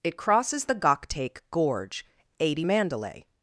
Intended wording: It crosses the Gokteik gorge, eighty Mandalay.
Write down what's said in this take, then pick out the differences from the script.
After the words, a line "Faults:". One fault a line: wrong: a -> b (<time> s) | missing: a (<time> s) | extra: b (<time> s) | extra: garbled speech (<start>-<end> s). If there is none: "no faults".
It crosses the Gokteik gorge, eighty Mandalay.
Faults:
no faults